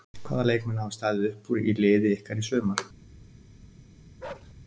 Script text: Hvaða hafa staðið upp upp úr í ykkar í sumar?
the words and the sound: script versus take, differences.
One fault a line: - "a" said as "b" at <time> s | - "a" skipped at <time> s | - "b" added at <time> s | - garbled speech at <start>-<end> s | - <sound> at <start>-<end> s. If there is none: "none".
- "leikmenn" added at 0.5 s
- "upp" skipped at 1.5 s
- "liði" added at 1.8 s
- bark at 4.2-4.5 s